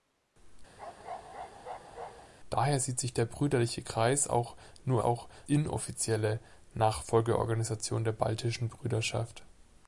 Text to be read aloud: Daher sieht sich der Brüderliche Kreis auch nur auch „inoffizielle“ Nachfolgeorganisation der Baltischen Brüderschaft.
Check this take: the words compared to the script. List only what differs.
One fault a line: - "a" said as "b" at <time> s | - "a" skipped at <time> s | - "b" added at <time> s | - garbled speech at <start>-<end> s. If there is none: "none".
none